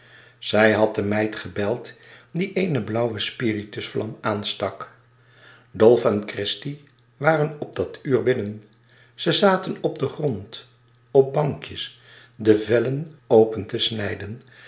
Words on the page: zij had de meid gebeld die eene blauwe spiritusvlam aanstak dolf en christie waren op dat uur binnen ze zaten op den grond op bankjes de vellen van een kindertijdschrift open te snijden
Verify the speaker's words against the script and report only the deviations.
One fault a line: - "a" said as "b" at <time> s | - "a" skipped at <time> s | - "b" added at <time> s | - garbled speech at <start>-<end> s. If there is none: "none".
- "van een kindertijdschrift" skipped at 13.1 s